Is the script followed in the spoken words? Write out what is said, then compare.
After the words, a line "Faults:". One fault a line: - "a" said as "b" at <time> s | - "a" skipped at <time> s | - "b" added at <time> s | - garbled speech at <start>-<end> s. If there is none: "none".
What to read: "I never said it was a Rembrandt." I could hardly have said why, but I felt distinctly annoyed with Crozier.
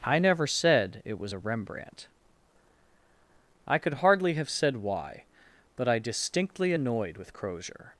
"I never said it was a Rembrandt." I could hardly have said why, but I distinctly annoyed with Crozier.
Faults:
- "felt" skipped at 6.0 s